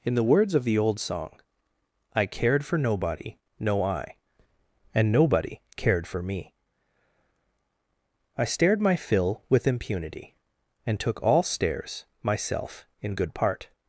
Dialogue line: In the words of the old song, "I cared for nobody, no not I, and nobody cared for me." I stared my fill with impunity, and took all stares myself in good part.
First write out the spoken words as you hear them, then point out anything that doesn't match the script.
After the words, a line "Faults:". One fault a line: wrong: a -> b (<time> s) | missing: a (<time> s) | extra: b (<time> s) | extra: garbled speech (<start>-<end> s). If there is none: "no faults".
In the words of the old song, "I cared for nobody, no I, and nobody cared for me." I stared my fill with impunity, and took all stares myself in good part.
Faults:
missing: not (3.8 s)